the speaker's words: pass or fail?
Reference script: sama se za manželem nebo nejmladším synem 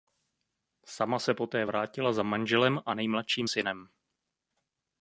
fail